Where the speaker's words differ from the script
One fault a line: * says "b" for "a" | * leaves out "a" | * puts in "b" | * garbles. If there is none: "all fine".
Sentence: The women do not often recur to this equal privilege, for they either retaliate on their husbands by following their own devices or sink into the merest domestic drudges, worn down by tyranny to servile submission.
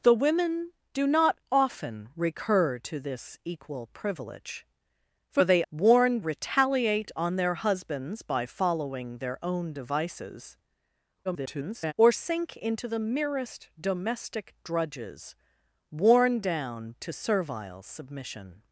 * says "worn" for "either"
* garbles
* leaves out "by tyranny"